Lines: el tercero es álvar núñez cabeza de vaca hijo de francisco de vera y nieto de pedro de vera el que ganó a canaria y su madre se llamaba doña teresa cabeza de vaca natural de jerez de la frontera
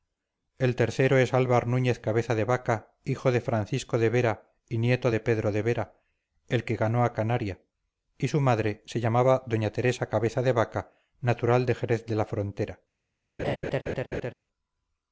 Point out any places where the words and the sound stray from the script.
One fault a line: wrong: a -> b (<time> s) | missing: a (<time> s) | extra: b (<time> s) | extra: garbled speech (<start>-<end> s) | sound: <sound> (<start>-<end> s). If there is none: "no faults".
sound: laugh (13.4-14.3 s)